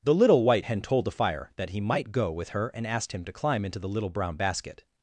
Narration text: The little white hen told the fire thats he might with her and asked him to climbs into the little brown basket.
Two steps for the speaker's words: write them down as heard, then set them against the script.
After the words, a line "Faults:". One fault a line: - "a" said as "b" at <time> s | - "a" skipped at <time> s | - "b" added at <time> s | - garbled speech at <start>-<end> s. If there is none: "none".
The little white hen told the fire that he might go with her and asked him to climb into the little brown basket.
Faults:
- "thats" said as "that" at 1.6 s
- "go" added at 2.1 s
- "climbs" said as "climb" at 3.3 s